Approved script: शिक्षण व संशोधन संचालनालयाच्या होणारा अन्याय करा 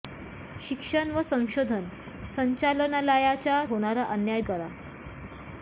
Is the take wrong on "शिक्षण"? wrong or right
right